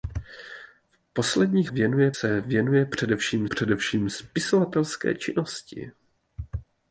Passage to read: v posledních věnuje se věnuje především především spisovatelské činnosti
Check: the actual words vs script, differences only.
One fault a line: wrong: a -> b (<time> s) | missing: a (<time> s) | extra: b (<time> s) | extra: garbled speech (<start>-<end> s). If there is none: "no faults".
no faults